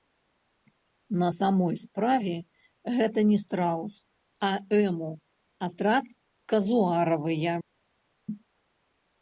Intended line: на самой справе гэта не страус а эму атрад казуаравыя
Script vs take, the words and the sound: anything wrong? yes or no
no